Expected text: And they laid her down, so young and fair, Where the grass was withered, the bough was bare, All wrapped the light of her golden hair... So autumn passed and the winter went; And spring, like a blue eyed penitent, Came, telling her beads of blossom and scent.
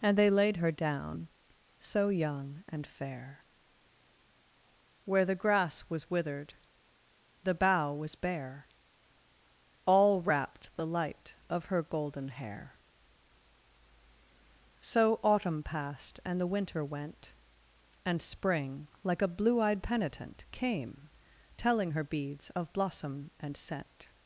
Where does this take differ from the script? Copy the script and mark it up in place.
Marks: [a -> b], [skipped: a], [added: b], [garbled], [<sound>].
And they laid her down, so young and fair, Where the grass was withered, the bough was bare, All wrapped the light of her golden hair... So autumn passed and the winter went; And spring, like a blue eyed penitent, Came, telling her beads of blossom and scent.